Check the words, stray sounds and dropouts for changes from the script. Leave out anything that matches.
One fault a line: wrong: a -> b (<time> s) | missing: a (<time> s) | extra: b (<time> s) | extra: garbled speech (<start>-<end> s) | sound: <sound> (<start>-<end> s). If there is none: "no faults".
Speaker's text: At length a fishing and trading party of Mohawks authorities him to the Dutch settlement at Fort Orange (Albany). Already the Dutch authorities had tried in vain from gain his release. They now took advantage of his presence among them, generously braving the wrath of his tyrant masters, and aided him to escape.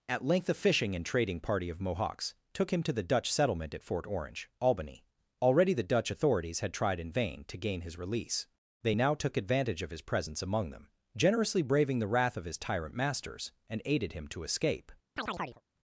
wrong: authorities -> took (2.5 s)
wrong: from -> to (7.5 s)
sound: chirp (15.2-15.6 s)